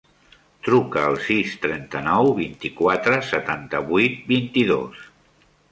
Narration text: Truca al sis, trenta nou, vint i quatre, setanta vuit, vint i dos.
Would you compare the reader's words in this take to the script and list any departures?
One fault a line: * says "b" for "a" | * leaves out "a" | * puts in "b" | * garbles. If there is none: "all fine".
all fine